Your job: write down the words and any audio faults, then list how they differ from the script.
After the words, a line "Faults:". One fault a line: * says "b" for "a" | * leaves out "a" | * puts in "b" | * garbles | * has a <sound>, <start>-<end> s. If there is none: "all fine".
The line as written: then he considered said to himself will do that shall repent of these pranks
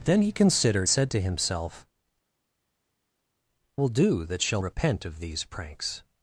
then he considered said to himself will do that shall repent of these pranks
Faults:
all fine